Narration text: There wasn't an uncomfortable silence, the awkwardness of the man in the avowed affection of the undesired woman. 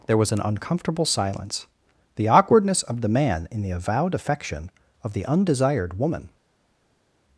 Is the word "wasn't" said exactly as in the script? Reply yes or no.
no